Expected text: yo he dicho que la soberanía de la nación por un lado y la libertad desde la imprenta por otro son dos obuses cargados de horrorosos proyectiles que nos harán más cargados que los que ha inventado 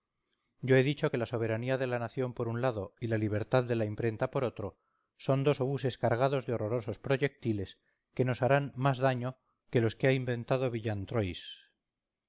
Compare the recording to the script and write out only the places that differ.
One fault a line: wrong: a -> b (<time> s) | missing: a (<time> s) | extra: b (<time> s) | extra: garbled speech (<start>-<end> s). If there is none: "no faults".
wrong: desde -> de (3.6 s)
wrong: cargados -> daño (9.0 s)